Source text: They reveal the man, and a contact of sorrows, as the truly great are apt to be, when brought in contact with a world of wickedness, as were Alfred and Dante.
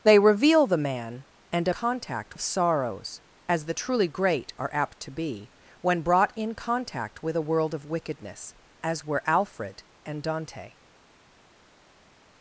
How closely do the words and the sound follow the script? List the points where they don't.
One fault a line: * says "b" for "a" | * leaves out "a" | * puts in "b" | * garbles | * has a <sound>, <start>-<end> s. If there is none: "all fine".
all fine